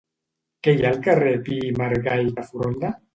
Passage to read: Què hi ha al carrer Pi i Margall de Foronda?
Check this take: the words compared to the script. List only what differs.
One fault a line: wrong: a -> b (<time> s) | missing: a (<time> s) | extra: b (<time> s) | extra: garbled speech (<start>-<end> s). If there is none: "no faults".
no faults